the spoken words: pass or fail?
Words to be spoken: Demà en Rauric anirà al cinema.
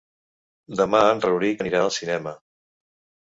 pass